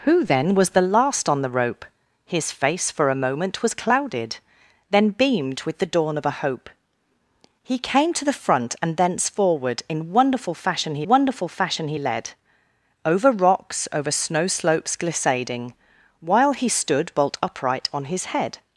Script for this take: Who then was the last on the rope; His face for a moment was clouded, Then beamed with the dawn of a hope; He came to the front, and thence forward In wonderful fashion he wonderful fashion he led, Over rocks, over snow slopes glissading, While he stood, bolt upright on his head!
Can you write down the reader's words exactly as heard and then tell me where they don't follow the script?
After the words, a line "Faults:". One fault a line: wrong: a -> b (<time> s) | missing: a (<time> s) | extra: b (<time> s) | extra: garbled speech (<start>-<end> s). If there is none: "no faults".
Who then was the last on the rope; His face for a moment was clouded, Then beamed with the dawn of a hope; He came to the front, and thence forward In wonderful fashion he wonderful fashion he led, Over rocks, over snow slopes glissading, While he stood, bolt upright on his head!
Faults:
no faults